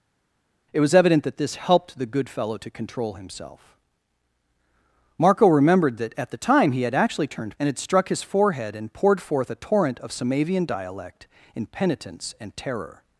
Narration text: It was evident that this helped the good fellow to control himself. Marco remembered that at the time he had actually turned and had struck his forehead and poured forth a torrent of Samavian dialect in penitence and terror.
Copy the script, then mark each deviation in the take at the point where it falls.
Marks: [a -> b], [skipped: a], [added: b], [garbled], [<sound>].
It was evident that this helped the good fellow to control himself. Marco remembered that at the time he had actually turned and had struck his forehead and poured forth a torrent of Samavian dialect in penitence and terror.